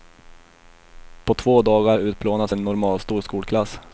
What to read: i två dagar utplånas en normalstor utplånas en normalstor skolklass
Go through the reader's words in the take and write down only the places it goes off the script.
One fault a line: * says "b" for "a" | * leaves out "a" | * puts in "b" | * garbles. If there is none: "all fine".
* says "på" for "i"
* leaves out "utplånas en normalstor"